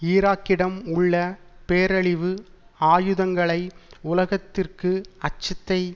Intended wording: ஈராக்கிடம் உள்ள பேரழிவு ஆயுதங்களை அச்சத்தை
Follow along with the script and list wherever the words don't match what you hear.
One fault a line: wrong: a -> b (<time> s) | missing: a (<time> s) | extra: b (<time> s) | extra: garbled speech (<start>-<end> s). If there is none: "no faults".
extra: உலகத்திற்கு (4.0 s)